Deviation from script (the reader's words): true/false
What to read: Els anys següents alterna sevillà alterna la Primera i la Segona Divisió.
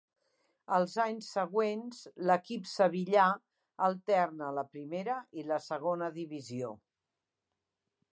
true